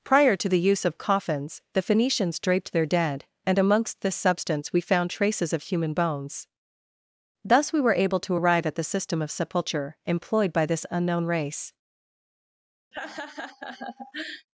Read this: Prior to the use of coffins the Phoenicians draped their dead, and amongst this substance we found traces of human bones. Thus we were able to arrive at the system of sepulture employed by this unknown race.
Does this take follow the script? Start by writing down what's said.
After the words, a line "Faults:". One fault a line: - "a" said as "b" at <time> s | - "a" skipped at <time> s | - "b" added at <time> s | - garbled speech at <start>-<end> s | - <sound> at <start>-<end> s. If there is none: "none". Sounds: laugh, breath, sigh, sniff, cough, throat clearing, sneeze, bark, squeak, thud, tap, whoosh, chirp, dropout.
Prior to the use of coffins the Phoenicians draped their dead, and amongst this substance we found traces of human bones. Thus we were able to arrive at the system of sepulture employed by this unknown race.
Faults:
- laugh at 12.9-14.5 s